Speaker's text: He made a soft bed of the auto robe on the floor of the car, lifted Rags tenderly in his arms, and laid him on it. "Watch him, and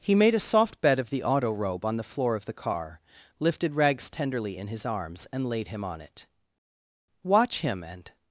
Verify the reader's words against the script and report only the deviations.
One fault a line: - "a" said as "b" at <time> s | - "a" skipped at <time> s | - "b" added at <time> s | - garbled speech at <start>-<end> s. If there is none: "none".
none